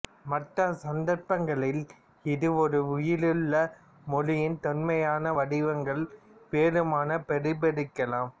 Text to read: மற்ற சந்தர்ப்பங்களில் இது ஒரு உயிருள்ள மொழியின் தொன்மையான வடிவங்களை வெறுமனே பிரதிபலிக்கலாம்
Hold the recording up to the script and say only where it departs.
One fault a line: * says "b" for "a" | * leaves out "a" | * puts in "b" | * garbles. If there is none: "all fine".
all fine